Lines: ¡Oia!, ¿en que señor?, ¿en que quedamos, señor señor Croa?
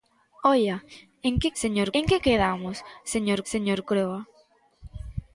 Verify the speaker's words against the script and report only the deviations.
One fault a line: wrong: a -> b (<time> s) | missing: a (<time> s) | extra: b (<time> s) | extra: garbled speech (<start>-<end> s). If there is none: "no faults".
no faults